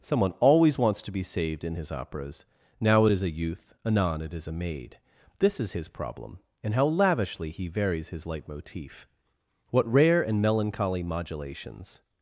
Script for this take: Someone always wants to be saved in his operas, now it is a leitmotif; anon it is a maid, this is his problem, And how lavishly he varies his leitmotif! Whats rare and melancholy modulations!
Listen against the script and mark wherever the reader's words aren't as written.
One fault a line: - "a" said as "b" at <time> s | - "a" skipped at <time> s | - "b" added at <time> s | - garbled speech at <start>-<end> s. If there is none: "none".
- "leitmotif" said as "youth" at 3.3 s
- "Whats" said as "What" at 9.7 s